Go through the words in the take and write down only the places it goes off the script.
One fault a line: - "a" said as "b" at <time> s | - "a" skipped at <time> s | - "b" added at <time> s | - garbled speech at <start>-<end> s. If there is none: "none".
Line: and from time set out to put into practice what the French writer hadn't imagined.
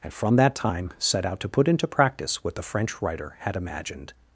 - "that" added at 0.3 s
- "hadn't" said as "had" at 3.4 s